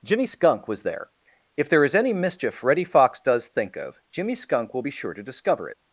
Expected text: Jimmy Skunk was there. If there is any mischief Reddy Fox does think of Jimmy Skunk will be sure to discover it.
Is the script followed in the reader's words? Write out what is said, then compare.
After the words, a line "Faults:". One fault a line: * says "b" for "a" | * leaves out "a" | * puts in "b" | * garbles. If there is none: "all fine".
Jimmy Skunk was there. If there is any mischief Reddy Fox does think of Jimmy Skunk will be sure to discover it.
Faults:
all fine